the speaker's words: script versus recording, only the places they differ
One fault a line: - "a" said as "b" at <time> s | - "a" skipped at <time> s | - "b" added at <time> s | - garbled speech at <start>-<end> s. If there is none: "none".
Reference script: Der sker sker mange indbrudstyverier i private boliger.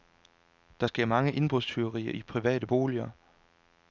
- "sker" skipped at 1.1 s